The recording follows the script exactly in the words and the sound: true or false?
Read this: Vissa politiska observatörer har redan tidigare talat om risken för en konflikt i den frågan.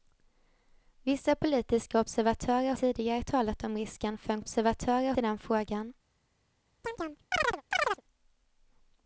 false